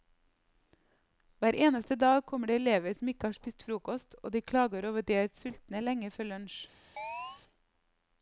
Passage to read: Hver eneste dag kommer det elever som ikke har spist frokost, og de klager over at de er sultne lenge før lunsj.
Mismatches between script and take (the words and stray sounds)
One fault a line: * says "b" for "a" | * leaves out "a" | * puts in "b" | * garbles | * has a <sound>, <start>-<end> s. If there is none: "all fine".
* has a chirp, 7.0-7.4 s